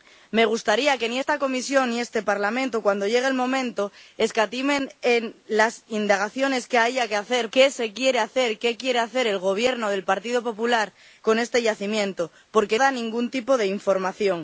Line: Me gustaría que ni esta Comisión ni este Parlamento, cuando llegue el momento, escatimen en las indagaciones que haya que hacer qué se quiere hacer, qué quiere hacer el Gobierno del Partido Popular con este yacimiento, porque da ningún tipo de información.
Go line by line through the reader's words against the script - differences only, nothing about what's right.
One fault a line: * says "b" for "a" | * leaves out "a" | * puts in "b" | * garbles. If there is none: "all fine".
all fine